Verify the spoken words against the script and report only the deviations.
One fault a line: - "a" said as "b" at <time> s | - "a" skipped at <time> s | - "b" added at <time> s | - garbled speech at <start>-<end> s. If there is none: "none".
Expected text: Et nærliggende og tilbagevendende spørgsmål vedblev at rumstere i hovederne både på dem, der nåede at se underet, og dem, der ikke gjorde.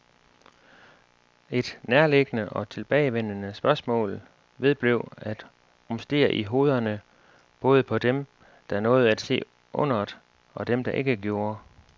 none